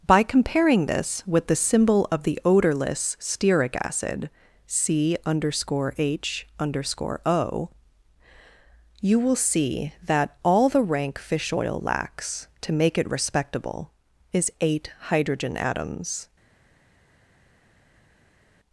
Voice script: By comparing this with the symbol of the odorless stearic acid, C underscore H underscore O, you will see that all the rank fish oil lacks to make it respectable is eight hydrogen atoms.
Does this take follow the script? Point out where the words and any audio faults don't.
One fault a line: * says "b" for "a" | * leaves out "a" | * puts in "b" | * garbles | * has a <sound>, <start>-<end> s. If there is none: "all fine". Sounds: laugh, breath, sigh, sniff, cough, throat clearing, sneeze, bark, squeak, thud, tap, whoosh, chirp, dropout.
all fine